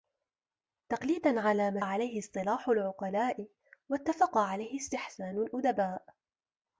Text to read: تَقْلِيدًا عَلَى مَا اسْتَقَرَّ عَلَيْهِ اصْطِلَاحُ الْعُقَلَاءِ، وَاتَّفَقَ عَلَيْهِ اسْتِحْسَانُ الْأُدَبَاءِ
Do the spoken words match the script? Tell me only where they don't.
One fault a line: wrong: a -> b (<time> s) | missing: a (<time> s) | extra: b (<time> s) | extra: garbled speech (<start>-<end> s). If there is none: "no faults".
missing: اسْتَقَرَّ (1.8 s)